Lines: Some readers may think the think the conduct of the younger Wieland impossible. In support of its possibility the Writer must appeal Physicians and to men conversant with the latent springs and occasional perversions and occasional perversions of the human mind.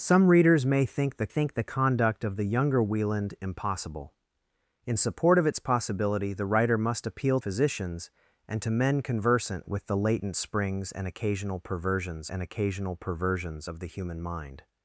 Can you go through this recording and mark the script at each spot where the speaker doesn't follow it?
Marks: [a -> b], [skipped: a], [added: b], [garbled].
Some readers may think the think the conduct of the younger Wieland impossible. In support of its possibility the Writer must appeal Physicians and to men conversant with the latent springs and occasional perversions and occasional perversions of the human mind.